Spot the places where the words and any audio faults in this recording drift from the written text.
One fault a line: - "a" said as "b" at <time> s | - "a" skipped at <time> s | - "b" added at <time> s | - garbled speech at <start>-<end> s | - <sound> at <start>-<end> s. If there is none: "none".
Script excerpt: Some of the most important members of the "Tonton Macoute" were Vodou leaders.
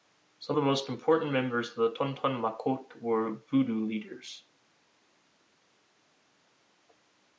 - "of" skipped at 0.6 s